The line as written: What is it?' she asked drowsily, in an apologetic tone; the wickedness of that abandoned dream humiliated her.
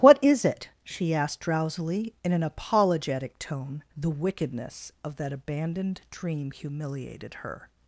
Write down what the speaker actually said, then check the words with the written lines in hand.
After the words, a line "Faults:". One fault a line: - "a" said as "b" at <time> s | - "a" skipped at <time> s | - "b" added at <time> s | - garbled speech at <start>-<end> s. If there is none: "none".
What is it?' she asked drowsily, in an apologetic tone; the wickedness of that abandoned dream humiliated her.
Faults:
none